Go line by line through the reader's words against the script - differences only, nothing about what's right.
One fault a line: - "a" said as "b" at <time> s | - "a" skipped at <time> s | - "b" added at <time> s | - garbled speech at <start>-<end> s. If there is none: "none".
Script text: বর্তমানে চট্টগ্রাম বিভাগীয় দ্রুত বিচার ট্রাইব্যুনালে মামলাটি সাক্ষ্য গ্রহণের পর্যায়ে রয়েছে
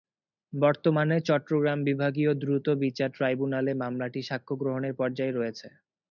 none